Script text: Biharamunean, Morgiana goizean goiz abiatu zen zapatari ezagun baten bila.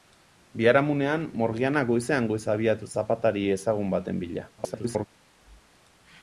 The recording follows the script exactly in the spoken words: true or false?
false